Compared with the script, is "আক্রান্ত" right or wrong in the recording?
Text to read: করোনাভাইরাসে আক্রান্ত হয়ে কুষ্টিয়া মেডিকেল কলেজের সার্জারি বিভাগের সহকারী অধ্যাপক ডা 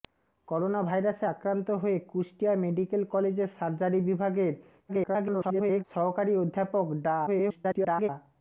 right